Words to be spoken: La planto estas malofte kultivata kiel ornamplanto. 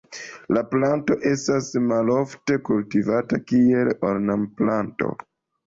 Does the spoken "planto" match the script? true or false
true